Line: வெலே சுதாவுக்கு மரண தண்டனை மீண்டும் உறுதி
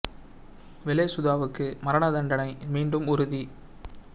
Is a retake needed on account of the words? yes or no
no